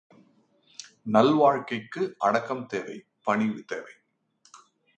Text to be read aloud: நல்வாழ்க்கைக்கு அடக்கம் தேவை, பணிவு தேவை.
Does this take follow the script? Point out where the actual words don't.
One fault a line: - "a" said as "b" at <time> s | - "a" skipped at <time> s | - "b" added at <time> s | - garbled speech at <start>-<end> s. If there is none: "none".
none